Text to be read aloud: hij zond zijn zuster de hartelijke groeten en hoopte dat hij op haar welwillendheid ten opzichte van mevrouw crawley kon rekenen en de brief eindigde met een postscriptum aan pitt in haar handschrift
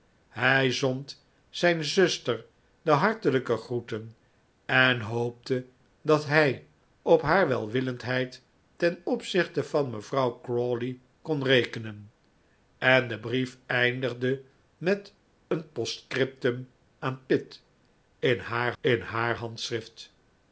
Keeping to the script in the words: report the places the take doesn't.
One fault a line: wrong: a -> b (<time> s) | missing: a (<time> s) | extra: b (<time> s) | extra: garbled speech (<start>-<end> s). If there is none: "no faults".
extra: in haar (18.8 s)